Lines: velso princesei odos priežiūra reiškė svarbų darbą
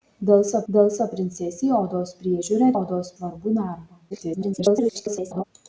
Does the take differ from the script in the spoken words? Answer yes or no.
yes